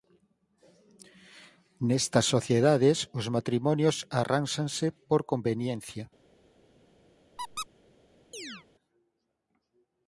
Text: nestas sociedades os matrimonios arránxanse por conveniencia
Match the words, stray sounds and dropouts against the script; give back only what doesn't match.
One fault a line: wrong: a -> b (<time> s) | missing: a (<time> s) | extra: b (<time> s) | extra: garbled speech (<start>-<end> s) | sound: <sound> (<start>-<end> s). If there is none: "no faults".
sound: squeak (7.4-7.7 s)
sound: chirp (8.3-8.7 s)